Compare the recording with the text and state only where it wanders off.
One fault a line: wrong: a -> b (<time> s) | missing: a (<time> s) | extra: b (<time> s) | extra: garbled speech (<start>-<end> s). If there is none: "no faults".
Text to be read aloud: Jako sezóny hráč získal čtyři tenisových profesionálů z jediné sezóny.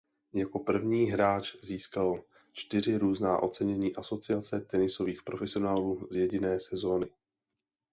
wrong: sezóny -> první (0.6 s)
extra: různá ocenění Asociace (3.0 s)